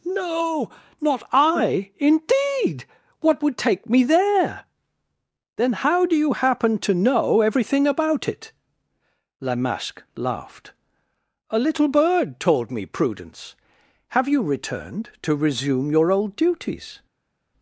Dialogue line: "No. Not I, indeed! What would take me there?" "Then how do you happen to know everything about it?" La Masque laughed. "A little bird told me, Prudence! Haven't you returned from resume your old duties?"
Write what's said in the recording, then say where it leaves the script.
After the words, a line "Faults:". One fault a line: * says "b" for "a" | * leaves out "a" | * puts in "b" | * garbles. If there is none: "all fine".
"No. Not I, indeed! What would take me there?" "Then how do you happen to know everything about it?" La Masque laughed. "A little bird told me, Prudence! Have you returned to resume your old duties?"
Faults:
* says "Have" for "Haven't"
* says "to" for "from"